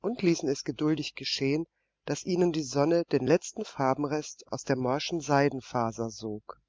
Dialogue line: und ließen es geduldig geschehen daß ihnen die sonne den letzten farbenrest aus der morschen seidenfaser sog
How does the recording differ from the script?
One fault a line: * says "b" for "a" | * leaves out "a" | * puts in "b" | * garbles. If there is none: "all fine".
all fine